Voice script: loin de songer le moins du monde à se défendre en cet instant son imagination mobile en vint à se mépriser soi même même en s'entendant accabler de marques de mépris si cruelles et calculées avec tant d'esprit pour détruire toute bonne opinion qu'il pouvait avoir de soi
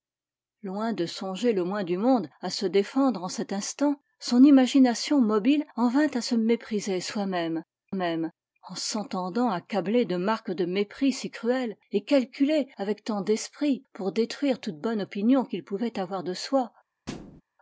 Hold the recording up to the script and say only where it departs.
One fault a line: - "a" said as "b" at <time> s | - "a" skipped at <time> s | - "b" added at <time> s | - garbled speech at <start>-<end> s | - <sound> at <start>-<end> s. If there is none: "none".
- thud at 17.1-17.4 s